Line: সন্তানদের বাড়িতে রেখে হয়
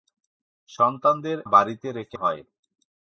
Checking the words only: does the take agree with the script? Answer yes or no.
yes